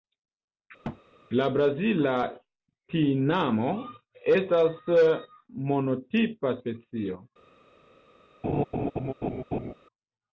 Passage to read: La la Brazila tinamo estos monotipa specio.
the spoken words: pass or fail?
fail